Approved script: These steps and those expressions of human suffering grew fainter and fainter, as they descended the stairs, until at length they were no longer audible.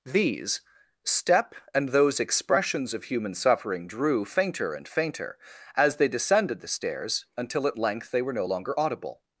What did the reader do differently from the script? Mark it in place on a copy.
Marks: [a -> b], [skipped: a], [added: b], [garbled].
These [steps -> step] and those expressions of human suffering [grew -> drew] fainter and fainter, as they descended the stairs, until at length they were no longer audible.